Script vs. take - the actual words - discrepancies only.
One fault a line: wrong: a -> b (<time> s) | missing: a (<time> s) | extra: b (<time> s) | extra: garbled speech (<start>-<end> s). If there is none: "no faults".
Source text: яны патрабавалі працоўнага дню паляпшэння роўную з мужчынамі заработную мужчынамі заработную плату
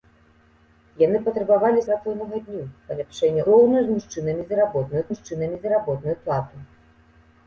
no faults